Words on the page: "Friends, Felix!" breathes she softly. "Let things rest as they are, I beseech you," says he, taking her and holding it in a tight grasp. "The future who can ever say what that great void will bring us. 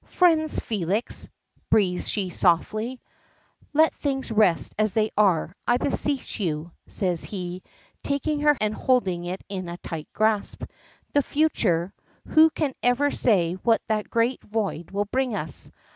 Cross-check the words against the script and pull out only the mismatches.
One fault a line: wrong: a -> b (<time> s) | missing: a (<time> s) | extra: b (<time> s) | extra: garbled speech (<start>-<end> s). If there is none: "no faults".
no faults